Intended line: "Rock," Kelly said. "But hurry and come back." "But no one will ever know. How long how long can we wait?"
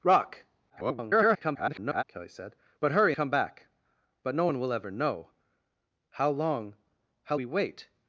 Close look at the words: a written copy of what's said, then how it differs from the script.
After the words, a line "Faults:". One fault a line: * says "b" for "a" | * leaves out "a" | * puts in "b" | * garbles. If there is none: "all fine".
"Rock," [garbled] Kelly said. "But hurry come back." "But no one will ever know. How long how we wait?"
Faults:
* garbles
* leaves out "and"
* leaves out "long can"